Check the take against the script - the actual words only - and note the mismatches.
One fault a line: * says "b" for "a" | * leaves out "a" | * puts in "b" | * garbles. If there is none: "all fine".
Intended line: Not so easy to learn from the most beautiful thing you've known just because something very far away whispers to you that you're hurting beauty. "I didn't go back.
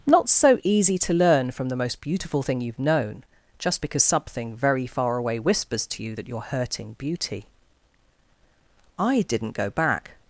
all fine